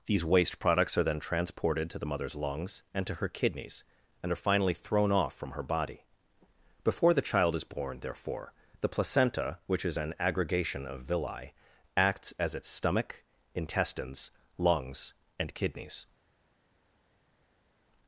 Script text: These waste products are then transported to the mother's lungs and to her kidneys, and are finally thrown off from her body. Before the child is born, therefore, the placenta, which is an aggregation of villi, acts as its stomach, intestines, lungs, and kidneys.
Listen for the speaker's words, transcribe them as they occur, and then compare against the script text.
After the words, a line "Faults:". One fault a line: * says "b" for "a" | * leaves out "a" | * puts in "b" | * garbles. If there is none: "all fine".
These waste products are then transported to the mother's lungs and to her kidneys, and are finally thrown off from her body. Before the child is born, therefore, the placenta, which is an aggregation of villi, acts as its stomach, intestines, lungs, and kidneys.
Faults:
all fine